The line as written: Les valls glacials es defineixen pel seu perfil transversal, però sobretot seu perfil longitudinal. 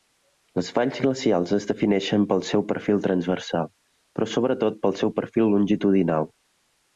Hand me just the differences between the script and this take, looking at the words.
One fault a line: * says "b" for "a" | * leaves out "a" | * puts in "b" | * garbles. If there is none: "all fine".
* puts in "pel"